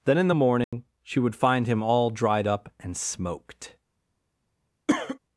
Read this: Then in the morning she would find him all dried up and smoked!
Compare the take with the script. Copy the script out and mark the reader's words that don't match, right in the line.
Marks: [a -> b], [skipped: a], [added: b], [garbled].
Then in the morning she would find him all dried up and smoked!